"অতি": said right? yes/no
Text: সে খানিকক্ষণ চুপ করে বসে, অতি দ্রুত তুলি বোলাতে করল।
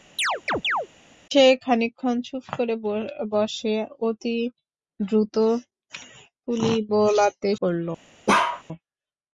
yes